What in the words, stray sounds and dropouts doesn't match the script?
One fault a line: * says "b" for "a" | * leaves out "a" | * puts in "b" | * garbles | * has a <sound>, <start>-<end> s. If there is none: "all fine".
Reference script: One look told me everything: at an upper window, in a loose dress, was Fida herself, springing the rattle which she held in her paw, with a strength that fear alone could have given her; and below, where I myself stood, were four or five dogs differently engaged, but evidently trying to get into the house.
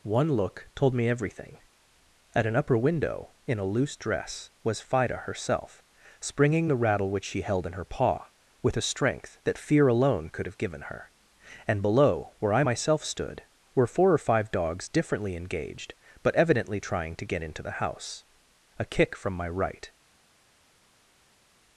* puts in "A kick from my right"